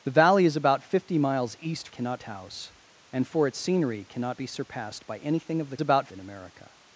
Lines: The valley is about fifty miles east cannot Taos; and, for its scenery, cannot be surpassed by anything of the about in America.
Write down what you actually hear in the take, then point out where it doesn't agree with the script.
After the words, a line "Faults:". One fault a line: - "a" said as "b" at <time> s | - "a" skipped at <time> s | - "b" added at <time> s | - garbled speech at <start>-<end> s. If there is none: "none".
The valley is about fifty miles east cannot Taos; and, for its scenery, cannot be surpassed by anything of the about in America.
Faults:
none